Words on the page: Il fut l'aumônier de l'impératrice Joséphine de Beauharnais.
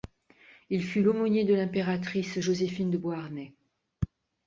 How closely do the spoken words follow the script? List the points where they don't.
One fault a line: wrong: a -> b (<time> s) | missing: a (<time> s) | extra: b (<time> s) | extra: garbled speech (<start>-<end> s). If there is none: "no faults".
no faults